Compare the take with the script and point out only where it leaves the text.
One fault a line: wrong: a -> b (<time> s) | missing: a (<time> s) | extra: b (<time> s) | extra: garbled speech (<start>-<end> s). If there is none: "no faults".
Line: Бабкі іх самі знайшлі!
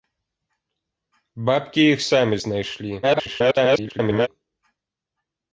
extra: garbled speech (3.0-4.3 s)